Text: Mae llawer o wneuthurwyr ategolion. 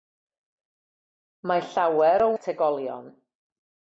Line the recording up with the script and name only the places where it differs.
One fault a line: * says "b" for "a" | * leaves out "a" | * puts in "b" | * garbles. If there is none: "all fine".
* leaves out "wneuthurwyr"